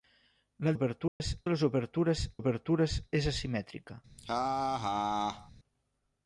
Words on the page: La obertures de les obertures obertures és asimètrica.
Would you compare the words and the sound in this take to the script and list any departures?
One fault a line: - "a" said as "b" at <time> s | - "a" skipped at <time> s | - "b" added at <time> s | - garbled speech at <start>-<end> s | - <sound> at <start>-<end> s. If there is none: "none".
- dropout at 1.1-1.2 s
- laugh at 4.2-5.5 s